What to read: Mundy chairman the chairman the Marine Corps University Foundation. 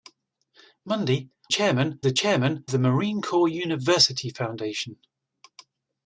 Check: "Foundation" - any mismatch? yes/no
no